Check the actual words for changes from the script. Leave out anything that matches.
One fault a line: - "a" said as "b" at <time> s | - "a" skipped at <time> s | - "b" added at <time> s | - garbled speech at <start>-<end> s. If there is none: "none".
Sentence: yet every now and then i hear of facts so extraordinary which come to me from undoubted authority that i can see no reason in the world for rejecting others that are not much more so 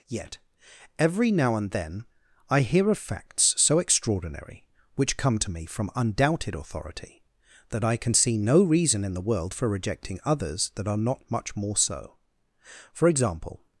- "for example" added at 12.9 s